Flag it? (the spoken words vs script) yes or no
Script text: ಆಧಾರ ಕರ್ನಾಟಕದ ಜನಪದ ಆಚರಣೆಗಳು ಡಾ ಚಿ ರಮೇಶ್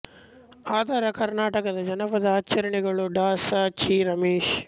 yes